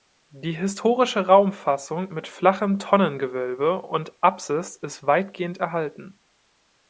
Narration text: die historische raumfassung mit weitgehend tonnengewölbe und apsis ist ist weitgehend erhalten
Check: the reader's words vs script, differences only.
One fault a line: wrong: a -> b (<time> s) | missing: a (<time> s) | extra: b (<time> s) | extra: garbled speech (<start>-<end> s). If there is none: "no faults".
wrong: weitgehend -> flachem (2.3 s)
missing: ist (5.1 s)